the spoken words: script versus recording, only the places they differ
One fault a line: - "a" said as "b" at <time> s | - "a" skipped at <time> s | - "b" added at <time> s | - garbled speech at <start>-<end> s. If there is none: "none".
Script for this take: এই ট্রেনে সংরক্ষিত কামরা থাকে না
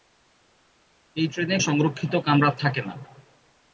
none